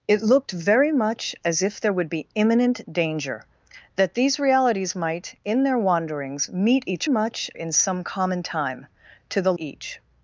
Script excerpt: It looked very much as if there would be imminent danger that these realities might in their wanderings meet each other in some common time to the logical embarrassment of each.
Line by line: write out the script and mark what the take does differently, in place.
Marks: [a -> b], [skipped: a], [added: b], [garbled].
It looked very much as if there would be imminent danger that these realities might in their wanderings meet each [other -> much] in some common time to the [skipped: logical embarrassment of] each.